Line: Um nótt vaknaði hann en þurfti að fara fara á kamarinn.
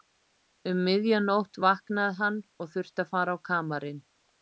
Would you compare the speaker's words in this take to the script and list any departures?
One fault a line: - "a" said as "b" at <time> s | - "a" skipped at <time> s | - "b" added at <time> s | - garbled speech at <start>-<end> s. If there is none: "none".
- "miðja" added at 0.9 s
- "en" said as "og" at 2.6 s
- "fara" skipped at 3.4 s